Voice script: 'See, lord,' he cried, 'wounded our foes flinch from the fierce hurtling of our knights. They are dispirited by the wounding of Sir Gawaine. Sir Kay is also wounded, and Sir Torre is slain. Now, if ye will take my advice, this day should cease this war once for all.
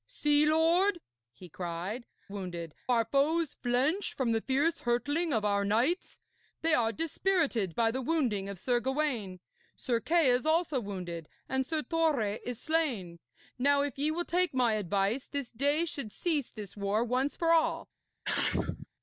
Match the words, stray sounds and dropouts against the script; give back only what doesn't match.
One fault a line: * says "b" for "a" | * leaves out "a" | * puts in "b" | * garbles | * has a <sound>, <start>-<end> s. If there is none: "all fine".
* has a sneeze, 18.2-18.9 s